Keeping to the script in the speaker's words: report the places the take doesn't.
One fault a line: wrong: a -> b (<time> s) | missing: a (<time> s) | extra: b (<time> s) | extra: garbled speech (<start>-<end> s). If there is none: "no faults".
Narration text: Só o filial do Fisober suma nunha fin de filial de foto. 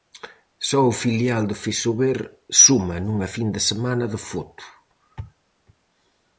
wrong: filial -> semana (3.7 s)